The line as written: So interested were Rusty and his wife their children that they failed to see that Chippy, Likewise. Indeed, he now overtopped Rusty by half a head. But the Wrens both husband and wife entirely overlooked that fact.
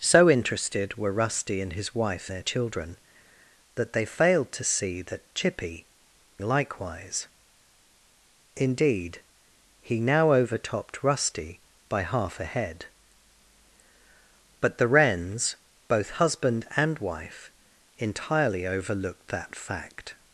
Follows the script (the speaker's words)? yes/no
yes